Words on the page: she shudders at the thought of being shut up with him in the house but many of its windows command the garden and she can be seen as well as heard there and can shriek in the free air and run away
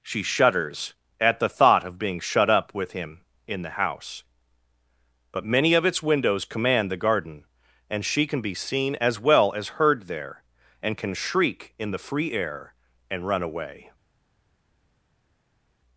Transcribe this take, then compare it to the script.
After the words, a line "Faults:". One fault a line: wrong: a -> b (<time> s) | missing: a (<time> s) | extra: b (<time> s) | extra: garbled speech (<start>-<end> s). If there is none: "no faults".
she shudders at the thought of being shut up with him in the house but many of its windows command the garden and she can be seen as well as heard there and can shriek in the free air and run away
Faults:
no faults